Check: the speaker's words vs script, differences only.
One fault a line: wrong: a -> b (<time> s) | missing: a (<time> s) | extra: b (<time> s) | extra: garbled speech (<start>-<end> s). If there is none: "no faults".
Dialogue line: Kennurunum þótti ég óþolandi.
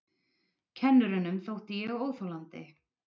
no faults